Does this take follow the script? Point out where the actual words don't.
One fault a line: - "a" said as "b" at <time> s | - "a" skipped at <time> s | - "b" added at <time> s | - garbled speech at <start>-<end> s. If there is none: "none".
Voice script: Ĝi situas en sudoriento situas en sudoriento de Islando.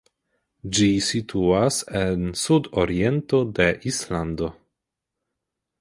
- "situas en sudoriento" skipped at 3.4 s